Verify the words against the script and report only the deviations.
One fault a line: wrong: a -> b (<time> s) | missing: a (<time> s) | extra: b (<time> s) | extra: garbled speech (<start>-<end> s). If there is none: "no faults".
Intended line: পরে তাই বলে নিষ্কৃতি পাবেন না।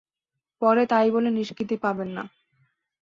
no faults